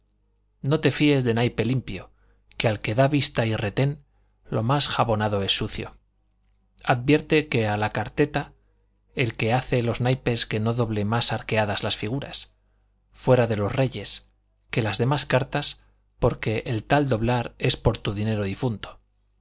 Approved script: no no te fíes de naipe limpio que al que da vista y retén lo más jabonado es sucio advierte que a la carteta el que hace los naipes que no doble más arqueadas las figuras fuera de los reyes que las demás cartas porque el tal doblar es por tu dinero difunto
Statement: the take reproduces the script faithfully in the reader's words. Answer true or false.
false